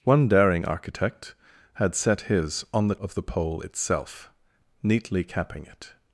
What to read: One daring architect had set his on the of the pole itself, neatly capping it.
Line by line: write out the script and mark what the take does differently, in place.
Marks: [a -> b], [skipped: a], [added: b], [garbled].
One daring architect had set his on the of the pole itself, neatly capping it.